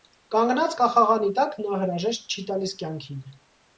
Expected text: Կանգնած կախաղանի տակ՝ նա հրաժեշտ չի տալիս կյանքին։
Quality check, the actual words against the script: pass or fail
pass